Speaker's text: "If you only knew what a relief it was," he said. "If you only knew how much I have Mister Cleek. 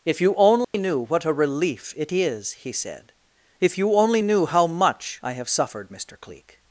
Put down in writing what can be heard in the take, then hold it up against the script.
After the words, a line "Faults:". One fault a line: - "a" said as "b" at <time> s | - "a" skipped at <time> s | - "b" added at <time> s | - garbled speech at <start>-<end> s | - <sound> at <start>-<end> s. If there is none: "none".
"If you only knew what a relief it is," he said. "If you only knew how much I have suffered, Mister Cleek.
Faults:
- dropout at 0.6-0.7 s
- "was" said as "is" at 2.1 s
- "suffered" added at 5.5 s